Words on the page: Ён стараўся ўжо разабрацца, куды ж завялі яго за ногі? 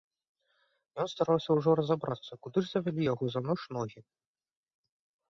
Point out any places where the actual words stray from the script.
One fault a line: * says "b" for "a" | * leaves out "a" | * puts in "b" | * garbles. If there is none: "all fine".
* puts in "ноч"